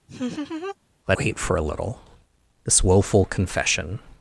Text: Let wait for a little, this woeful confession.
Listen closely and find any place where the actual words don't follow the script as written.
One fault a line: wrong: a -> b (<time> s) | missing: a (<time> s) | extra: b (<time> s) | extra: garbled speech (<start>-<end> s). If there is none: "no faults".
no faults